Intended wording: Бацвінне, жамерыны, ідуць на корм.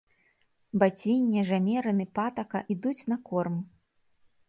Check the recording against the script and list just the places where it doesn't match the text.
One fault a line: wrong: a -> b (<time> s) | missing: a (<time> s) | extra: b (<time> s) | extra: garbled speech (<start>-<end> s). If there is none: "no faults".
extra: патака (2.2 s)